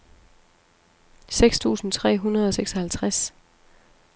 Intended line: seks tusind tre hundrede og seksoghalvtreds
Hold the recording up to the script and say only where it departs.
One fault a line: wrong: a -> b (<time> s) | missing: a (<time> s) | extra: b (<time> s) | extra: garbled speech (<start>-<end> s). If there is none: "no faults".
no faults